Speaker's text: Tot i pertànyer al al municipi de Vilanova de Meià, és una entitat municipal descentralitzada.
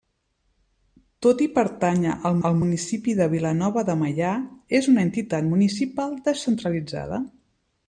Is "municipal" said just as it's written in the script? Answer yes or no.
yes